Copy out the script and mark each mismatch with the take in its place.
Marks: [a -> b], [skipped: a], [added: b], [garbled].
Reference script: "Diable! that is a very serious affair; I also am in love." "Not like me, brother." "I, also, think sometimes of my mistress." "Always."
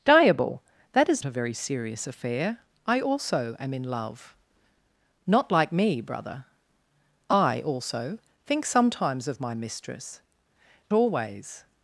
"Diable! that is a very serious affair; I also am in love." "Not like me, brother." "I, also, think sometimes of my mistress." "Always."